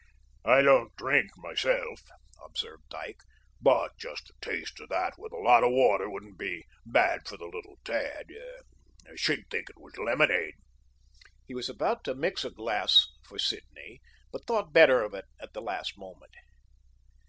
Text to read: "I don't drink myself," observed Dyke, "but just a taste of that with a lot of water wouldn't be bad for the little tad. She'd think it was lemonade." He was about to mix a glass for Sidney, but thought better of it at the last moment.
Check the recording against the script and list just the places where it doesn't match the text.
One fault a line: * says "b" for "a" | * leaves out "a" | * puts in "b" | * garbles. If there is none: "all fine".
all fine